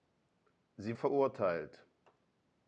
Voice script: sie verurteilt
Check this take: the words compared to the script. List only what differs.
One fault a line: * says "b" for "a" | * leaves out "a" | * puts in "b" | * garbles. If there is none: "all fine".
all fine